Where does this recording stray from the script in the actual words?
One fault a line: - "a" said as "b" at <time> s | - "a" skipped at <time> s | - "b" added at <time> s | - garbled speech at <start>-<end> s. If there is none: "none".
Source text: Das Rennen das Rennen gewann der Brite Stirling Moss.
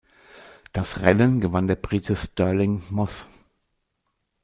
- "das Rennen" skipped at 1.4 s